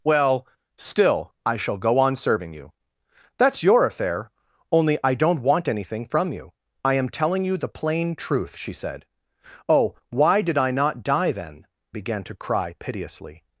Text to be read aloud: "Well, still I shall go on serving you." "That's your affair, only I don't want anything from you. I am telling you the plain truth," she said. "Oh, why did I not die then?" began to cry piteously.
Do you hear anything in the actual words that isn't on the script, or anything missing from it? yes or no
no